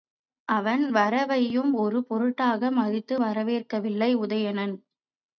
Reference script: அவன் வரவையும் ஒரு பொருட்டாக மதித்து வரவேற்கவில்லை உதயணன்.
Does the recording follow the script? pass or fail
pass